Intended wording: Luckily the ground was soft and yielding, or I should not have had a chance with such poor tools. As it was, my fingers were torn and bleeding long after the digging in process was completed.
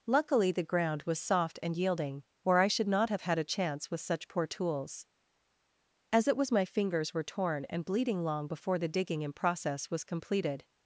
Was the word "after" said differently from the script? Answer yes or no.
yes